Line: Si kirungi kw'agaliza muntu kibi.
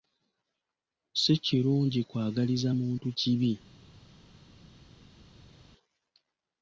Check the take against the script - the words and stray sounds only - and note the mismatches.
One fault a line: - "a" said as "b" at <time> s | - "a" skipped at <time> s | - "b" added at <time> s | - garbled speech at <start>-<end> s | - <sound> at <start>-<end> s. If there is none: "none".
none